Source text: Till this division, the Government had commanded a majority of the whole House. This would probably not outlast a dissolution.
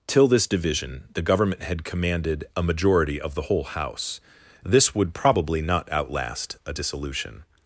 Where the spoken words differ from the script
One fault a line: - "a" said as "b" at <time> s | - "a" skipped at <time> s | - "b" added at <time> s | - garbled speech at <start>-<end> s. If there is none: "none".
none